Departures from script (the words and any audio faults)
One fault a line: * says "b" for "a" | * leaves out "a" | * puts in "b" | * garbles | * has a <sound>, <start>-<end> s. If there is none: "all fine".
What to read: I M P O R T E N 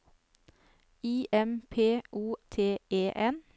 * leaves out "R"